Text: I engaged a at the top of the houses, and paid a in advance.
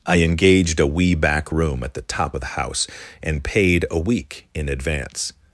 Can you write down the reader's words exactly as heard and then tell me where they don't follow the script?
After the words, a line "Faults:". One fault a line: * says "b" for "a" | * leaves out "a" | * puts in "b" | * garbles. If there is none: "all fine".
I engaged a wee back room at the top of the house, and paid a week in advance.
Faults:
* puts in "wee back room"
* says "house" for "houses"
* puts in "week"